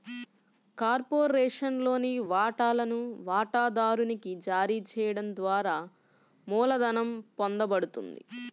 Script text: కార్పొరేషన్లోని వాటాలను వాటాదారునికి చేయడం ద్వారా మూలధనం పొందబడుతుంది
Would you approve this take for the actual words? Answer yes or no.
no